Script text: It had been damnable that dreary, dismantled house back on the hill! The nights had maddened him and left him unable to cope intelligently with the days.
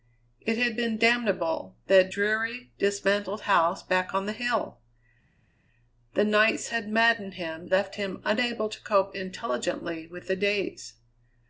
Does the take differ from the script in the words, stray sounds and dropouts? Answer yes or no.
yes